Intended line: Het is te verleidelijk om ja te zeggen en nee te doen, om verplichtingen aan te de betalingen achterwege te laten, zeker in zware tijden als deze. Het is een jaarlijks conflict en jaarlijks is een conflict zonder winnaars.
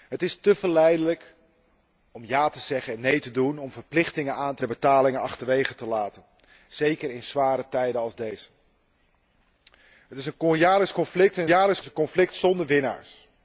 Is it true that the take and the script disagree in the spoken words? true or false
false